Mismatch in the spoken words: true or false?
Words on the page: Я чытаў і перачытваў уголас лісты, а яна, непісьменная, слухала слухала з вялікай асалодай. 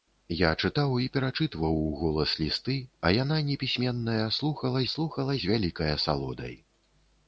false